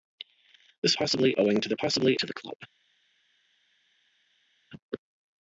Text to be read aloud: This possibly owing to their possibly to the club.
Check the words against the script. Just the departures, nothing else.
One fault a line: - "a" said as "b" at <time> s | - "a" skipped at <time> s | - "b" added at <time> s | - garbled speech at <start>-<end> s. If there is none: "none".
none